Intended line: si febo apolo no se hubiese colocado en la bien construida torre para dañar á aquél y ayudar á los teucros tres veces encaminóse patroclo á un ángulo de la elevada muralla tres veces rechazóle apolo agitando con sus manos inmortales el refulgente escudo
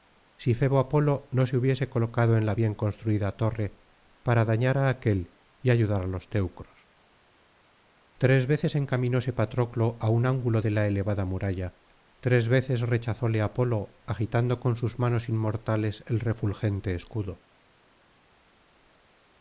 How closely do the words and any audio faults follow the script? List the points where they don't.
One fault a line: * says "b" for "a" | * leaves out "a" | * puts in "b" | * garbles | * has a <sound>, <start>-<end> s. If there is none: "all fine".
all fine